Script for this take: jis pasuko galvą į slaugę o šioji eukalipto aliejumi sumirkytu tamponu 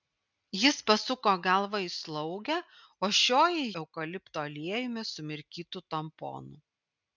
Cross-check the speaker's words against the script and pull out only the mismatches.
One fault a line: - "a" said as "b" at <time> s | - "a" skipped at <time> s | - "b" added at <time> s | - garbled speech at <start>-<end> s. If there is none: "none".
none